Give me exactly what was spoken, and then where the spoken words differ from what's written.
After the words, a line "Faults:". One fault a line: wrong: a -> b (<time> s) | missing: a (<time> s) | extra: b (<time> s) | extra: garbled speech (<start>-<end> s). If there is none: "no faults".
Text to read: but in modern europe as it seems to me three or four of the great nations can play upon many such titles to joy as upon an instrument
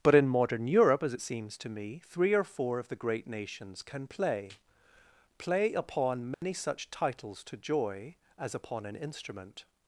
but in modern europe as it seems to me three or four of the great nations can play play upon many such titles to joy as upon an instrument
Faults:
extra: play (5.4 s)